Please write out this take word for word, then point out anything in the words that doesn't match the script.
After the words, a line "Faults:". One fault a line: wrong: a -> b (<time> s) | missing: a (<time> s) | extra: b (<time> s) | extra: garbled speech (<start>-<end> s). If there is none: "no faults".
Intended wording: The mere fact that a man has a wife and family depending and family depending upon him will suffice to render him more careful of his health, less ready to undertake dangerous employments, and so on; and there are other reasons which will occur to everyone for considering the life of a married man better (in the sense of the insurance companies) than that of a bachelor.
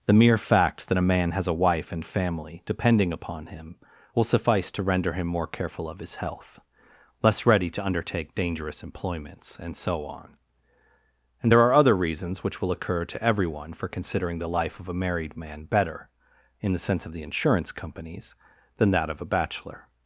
The mere fact that a man has a wife and family depending upon him will suffice to render him more careful of his health, less ready to undertake dangerous employments, and so on; and there are other reasons which will occur to everyone for considering the life of a married man better (in the sense of the insurance companies) than that of a bachelor.
Faults:
missing: and family depending (3.1 s)